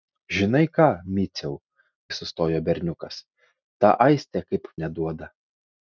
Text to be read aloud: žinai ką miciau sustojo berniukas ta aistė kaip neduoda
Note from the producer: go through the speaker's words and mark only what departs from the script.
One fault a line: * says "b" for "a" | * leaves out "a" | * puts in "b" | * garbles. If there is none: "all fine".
all fine